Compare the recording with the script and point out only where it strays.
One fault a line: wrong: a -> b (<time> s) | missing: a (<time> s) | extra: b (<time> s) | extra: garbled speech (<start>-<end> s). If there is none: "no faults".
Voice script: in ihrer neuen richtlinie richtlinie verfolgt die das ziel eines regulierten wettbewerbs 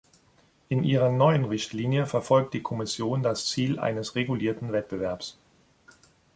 missing: richtlinie (2.1 s)
extra: kommission (2.6 s)